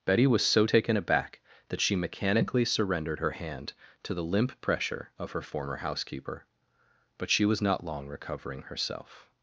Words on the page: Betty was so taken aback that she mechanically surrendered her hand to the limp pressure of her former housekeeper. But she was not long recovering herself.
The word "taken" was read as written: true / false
true